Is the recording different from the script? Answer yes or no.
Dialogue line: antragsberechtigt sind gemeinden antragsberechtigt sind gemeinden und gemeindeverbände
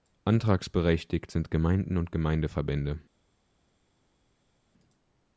yes